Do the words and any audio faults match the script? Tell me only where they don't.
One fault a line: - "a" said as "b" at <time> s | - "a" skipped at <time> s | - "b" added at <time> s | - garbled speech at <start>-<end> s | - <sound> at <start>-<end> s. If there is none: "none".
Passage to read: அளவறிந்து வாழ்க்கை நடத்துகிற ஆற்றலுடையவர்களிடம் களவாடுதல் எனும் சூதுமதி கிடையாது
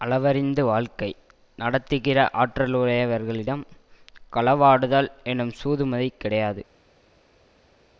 none